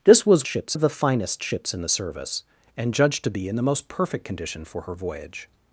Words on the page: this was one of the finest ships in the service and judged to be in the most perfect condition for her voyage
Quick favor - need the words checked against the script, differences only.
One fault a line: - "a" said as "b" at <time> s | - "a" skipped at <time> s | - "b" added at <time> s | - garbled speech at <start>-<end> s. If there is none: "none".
- "one" said as "ships" at 0.4 s